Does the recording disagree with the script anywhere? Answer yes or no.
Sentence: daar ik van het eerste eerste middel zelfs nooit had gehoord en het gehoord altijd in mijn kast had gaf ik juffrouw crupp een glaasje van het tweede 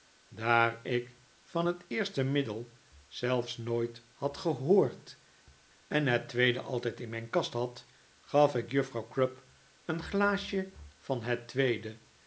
yes